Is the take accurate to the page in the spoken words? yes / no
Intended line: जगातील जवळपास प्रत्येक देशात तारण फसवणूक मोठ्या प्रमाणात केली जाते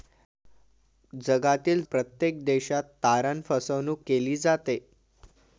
no